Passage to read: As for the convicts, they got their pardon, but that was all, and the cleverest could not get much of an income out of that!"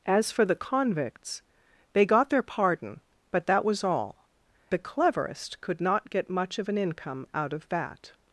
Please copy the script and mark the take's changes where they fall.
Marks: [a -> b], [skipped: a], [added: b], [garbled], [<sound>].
As for the convicts, they got their pardon, but that was all, [skipped: and] the cleverest could not get much of an income out of that!"